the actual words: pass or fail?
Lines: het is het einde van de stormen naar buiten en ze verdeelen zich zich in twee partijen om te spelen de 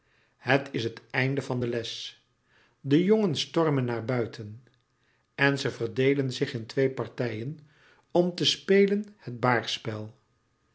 fail